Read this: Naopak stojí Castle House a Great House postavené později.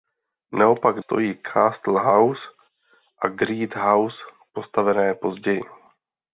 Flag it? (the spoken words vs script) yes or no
no